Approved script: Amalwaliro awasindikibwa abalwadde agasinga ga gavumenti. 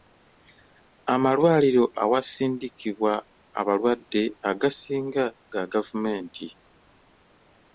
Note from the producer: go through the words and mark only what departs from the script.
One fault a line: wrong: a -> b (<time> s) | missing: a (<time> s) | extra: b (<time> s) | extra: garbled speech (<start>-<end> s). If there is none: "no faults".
no faults